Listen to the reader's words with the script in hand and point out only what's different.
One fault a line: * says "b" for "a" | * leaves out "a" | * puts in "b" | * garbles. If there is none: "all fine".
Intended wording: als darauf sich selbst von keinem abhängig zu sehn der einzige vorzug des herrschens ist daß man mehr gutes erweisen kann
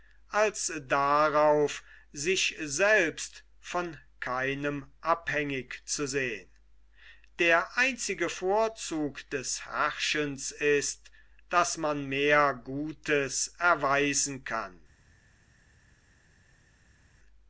all fine